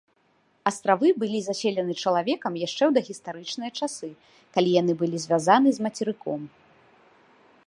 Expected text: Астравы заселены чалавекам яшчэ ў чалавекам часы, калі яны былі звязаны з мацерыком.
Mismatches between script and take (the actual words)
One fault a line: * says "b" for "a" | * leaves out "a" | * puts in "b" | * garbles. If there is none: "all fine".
* puts in "былі"
* says "дагістарычныя" for "чалавекам"